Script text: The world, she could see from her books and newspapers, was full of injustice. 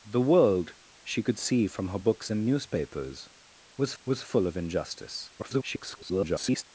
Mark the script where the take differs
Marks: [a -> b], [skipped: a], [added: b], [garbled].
The world, she could see from her books and newspapers, was [added: was] full of injustice. [garbled]